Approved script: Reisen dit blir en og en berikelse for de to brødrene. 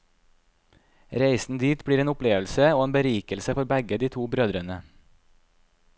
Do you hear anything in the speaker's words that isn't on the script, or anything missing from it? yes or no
yes